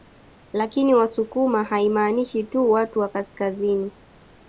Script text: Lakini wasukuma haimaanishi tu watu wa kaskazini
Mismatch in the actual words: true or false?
false